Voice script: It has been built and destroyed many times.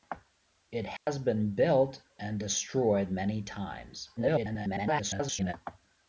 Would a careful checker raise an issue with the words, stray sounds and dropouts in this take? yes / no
yes